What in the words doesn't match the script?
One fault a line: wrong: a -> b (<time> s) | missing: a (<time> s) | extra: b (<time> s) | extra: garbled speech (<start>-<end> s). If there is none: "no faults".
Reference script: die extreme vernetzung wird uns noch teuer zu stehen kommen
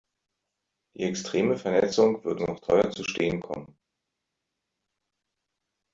missing: uns (2.4 s)